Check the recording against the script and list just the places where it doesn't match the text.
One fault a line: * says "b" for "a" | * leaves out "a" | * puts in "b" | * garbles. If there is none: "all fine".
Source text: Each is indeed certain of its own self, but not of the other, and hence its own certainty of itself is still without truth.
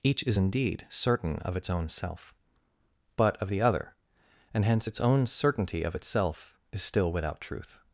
* leaves out "not"